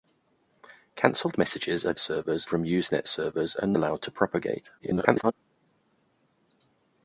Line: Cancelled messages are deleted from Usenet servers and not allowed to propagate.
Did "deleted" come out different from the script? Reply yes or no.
yes